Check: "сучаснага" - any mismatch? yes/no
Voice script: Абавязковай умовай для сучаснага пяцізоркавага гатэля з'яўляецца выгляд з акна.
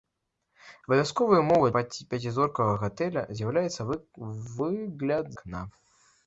yes